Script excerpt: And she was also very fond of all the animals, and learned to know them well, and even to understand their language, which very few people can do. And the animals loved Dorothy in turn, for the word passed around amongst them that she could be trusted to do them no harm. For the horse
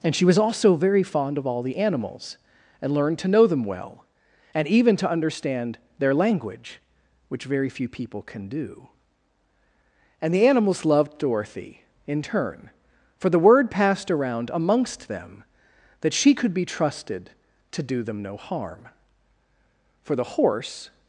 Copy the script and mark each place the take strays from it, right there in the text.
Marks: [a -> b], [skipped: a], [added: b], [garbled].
And she was also very fond of all the animals, and learned to know them well, and even to understand their language, which very few people can do. And the animals loved Dorothy in turn, for the word passed around amongst them that she could be trusted to do them no harm. For the horse